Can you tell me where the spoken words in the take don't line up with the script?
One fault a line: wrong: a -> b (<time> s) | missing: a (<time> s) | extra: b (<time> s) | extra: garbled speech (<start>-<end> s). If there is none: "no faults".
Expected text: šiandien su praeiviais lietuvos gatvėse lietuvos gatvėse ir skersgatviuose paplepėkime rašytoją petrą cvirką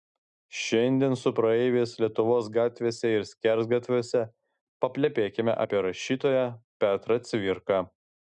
missing: lietuvos gatvėse (3.1 s)
extra: apie (5.7 s)